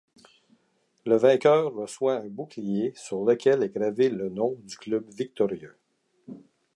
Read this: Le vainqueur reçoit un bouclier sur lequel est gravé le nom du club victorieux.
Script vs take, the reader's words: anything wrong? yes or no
no